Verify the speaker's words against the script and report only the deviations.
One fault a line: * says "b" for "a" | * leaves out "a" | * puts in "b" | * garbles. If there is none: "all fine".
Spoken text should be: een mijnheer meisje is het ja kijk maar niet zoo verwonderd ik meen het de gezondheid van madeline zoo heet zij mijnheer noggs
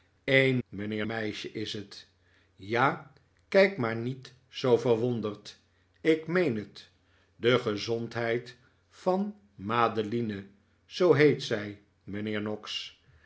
all fine